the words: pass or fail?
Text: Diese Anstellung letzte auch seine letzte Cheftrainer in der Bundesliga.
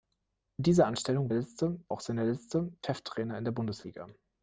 pass